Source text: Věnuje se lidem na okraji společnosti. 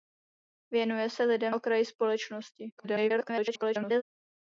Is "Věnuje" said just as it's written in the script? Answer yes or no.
yes